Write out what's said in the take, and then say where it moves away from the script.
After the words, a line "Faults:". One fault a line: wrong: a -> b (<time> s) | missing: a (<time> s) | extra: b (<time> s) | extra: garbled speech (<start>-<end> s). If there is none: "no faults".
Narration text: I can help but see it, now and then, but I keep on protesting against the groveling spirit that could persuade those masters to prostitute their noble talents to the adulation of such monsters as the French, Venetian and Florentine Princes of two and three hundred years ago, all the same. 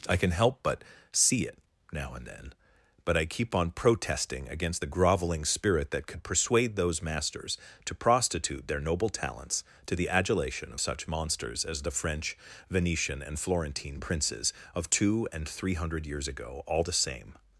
I can help but see it, now and then, but I keep on protesting against the groveling spirit that could persuade those masters to prostitute their noble talents to the adulation of such monsters as the French, Venetian and Florentine Princes of two and three hundred years ago, all the same.
Faults:
no faults